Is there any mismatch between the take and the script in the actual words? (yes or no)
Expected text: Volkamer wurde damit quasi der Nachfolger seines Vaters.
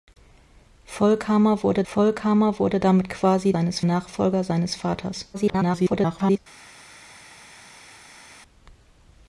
yes